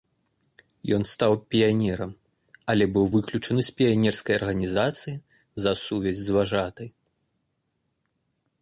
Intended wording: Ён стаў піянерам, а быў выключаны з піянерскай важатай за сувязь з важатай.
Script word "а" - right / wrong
wrong